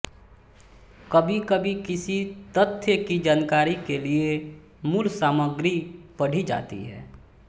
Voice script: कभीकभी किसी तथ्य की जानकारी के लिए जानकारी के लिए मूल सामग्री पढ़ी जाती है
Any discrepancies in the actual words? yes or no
yes